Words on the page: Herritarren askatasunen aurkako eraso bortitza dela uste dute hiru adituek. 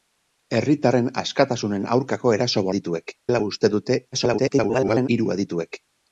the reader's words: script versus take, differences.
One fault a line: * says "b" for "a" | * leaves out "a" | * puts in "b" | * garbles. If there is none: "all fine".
* says "adituek" for "bortitza"
* garbles